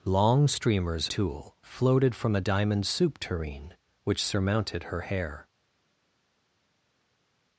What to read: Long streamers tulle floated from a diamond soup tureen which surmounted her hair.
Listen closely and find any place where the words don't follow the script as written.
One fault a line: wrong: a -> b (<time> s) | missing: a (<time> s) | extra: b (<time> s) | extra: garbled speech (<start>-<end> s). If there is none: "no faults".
no faults